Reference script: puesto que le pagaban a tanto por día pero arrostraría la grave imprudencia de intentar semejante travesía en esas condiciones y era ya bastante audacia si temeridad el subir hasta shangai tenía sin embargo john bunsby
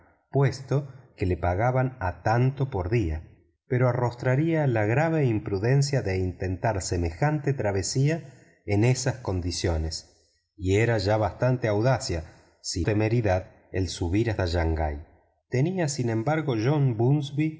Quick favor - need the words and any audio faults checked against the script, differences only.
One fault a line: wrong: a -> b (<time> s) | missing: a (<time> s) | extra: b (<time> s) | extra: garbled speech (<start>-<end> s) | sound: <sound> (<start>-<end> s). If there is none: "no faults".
no faults